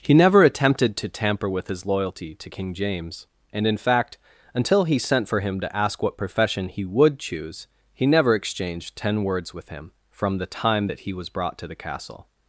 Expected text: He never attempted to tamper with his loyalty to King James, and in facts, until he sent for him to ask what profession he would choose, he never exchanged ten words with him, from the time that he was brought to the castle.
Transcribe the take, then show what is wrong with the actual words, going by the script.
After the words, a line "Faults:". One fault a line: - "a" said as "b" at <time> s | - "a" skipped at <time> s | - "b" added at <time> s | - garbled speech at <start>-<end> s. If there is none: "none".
He never attempted to tamper with his loyalty to King James, and in fact, until he sent for him to ask what profession he would choose, he never exchanged ten words with him, from the time that he was brought to the castle.
Faults:
- "facts" said as "fact" at 3.8 s